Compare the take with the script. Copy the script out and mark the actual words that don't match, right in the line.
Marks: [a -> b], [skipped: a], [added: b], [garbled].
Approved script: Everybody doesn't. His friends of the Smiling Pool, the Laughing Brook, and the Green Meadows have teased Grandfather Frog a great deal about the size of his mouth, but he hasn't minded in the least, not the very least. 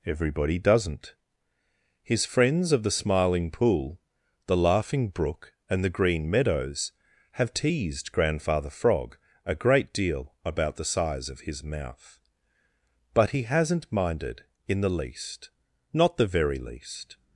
Everybody doesn't. His friends of the Smiling Pool, the Laughing Brook, and the Green Meadows have teased Grandfather Frog a great deal about the size of his mouth, but he hasn't minded in the least, not the very least.